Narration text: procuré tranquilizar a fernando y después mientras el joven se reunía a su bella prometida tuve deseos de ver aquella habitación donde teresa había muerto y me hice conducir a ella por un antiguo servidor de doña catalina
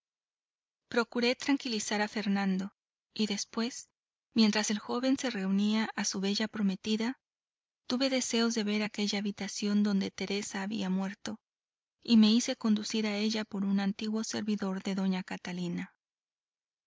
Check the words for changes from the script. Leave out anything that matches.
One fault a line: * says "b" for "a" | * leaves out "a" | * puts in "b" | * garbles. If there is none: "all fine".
all fine